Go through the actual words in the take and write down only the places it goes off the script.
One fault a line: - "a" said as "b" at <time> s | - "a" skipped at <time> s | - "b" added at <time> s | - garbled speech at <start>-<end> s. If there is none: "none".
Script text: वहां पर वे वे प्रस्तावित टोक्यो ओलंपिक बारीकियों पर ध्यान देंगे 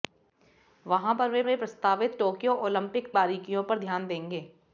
none